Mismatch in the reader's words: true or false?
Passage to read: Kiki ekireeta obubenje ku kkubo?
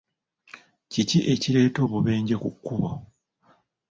false